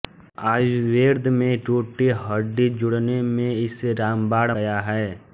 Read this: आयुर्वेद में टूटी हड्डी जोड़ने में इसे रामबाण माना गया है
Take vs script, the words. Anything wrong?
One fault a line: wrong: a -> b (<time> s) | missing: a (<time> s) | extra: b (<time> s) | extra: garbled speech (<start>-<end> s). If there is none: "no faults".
missing: माना (4.5 s)